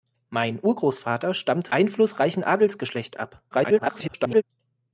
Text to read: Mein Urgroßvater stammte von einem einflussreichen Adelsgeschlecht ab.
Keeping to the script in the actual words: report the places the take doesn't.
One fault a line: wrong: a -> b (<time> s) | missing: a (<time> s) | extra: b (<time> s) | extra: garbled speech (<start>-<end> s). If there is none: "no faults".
missing: von einem (1.7 s)
extra: garbled speech (3.5-4.4 s)